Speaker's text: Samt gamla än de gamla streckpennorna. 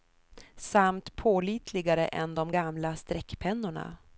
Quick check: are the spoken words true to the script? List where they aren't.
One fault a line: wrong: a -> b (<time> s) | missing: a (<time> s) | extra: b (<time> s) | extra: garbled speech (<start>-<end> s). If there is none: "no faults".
wrong: gamla -> pålitligare (1.1 s)